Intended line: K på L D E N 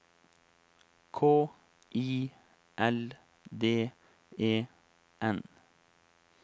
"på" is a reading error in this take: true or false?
true